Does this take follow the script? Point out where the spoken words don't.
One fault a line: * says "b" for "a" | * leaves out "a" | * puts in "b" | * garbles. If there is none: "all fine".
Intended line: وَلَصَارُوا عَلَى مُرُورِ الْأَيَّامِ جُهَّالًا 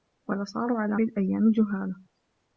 * leaves out "مُرُورِ"